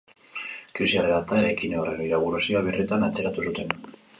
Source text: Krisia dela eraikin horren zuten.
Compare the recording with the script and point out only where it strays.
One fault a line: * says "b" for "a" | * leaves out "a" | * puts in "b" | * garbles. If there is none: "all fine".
* puts in "eta"
* puts in "inaugurazioa birritan atzeratu"